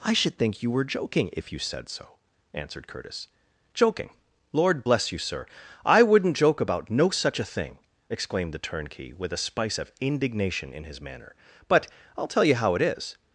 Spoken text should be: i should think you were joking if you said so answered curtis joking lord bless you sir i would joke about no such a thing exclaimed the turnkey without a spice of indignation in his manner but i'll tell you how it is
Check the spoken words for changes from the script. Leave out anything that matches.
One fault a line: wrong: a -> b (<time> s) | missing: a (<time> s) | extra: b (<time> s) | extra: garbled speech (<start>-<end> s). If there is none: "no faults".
wrong: would -> wouldn't (6.0 s)
wrong: without -> with (9.1 s)